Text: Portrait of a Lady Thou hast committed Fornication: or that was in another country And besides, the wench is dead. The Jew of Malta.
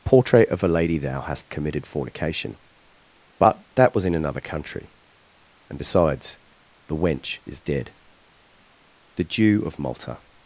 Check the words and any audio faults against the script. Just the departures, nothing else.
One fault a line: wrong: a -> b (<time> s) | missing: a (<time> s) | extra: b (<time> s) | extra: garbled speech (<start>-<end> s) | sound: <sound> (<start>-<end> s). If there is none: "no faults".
wrong: or -> but (3.4 s)